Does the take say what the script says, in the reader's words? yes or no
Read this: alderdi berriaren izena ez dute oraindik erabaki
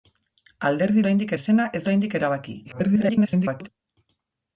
no